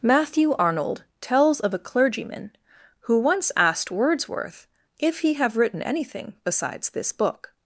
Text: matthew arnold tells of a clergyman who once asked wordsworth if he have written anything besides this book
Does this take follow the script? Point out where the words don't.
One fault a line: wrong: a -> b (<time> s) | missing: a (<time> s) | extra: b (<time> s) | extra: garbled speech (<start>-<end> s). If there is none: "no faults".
no faults